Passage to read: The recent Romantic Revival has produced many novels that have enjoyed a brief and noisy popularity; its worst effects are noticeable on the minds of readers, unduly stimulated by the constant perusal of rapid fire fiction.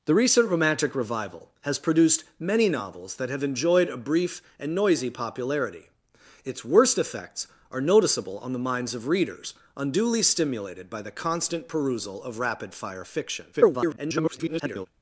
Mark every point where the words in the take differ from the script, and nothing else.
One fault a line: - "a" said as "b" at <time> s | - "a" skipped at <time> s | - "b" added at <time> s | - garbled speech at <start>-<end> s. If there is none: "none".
- garbled speech at 13.5-14.9 s